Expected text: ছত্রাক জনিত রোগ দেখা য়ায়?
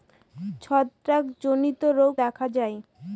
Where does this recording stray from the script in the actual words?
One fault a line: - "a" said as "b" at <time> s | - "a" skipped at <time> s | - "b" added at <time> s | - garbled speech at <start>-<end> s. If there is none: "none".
none